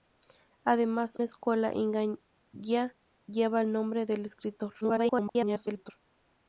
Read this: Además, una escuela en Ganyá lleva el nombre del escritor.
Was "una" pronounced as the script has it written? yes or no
no